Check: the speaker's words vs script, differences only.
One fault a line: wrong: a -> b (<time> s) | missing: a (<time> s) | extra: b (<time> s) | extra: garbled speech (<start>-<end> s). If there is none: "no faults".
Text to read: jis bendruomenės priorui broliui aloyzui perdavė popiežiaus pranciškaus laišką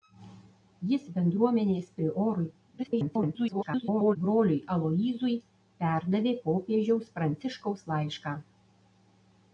extra: garbled speech (2.8-4.2 s)